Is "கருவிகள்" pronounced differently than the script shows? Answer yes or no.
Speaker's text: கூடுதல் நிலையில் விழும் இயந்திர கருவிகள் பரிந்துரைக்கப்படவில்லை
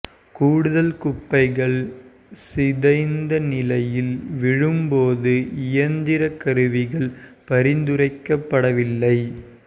no